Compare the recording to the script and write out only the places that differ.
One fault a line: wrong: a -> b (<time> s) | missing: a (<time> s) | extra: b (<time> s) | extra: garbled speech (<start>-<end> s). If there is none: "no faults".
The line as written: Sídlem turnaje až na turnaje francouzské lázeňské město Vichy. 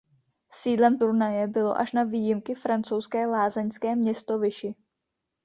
extra: bylo (1.5 s)
wrong: turnaje -> výjimky (2.0 s)